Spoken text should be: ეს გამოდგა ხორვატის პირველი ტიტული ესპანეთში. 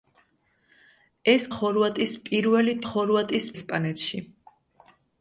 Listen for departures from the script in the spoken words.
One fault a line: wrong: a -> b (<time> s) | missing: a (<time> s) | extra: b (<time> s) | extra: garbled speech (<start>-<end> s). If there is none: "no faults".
missing: გამოდგა (1.4 s)
wrong: ტიტული -> ხორვატის (2.9 s)